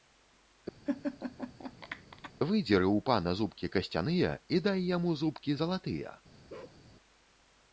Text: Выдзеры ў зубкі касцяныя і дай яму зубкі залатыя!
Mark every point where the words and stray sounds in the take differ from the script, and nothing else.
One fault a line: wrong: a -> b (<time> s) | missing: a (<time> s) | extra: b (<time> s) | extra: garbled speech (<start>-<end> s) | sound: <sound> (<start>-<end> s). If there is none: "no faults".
sound: laugh (0.9-2.3 s)
extra: пана (3.1 s)
sound: bark (6.5-6.8 s)